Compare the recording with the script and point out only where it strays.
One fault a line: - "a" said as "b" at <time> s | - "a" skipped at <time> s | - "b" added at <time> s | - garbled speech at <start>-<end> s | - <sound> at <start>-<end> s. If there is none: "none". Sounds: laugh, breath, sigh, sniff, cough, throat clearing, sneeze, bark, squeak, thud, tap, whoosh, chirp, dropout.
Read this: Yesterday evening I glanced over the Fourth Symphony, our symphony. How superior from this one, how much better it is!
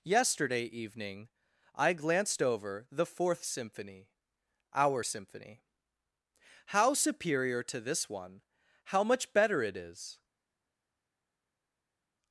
- "from" said as "to" at 7.6 s